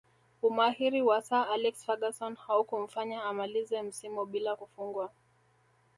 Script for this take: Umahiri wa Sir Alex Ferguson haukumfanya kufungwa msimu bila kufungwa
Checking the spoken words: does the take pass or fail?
fail